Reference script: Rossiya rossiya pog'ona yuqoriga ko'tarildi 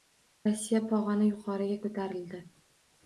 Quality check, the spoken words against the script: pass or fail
fail